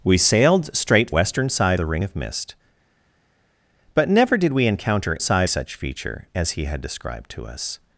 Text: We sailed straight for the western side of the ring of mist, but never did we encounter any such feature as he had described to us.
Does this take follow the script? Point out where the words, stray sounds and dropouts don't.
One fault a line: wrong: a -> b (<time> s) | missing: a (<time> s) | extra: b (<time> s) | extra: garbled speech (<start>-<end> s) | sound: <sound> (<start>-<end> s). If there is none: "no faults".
missing: for the (1.1 s)
missing: of (1.8 s)
wrong: any -> side (5.2 s)